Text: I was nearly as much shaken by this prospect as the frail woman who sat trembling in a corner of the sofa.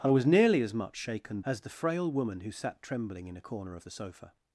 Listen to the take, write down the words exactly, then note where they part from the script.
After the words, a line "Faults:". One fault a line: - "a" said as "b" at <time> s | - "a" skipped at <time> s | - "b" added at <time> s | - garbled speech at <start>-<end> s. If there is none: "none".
I was nearly as much shaken as the frail woman who sat trembling in a corner of the sofa.
Faults:
- "by this prospect" skipped at 1.4 s